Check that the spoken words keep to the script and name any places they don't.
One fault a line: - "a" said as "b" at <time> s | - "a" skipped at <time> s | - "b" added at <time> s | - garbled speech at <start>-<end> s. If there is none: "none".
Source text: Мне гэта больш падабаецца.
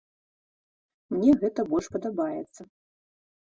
none